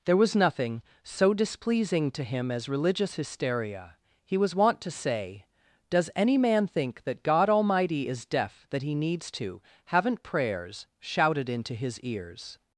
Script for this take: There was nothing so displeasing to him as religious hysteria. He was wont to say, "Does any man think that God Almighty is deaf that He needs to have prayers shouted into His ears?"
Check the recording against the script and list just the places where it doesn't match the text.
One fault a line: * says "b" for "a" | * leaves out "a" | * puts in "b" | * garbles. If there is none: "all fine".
* says "haven't" for "have"